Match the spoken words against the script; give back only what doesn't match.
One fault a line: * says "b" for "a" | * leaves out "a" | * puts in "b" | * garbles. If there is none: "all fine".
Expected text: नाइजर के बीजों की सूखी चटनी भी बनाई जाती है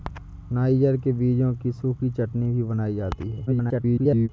* garbles